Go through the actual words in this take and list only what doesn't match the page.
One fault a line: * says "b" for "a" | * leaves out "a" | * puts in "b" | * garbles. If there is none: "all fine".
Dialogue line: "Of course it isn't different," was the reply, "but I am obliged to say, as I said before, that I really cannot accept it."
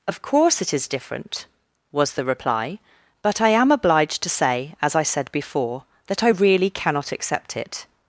* says "is" for "isn't"